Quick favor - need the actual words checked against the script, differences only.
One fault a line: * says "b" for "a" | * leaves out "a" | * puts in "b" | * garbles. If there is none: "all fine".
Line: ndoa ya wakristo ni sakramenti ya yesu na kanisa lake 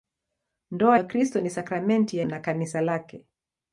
* leaves out "ya"
* leaves out "yesu"